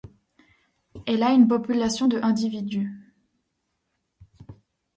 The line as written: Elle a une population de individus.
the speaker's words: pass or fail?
pass